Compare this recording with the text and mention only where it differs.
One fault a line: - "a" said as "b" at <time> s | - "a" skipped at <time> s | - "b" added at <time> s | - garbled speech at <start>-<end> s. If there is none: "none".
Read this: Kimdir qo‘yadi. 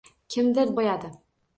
none